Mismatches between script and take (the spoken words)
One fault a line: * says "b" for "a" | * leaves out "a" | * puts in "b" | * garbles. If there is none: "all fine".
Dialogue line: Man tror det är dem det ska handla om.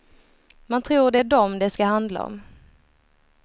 all fine